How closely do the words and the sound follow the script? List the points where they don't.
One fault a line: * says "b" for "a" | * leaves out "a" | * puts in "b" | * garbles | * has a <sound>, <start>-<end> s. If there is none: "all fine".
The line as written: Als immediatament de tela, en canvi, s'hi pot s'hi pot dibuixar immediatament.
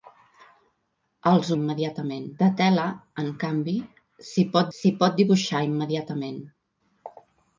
all fine